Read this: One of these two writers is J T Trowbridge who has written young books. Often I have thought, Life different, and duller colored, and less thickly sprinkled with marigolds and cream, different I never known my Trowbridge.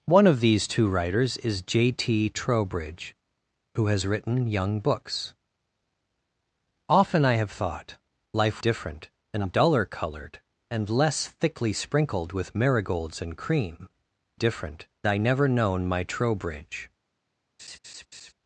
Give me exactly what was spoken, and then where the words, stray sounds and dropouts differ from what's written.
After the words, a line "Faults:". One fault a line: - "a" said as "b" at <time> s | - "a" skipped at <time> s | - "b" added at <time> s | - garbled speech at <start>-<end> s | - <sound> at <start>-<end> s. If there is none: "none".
One of these two writers is J T Trowbridge who has written young books. Often I have thought, Life different, and duller colored, and less thickly sprinkled with marigolds and cream, different I never known my Trowbridge.
Faults:
- laugh at 17.6-18.3 s